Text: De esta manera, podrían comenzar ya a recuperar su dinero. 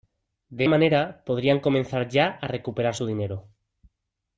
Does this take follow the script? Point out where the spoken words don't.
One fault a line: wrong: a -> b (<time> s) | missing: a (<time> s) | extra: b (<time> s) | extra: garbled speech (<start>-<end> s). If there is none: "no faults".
missing: esta (0.7 s)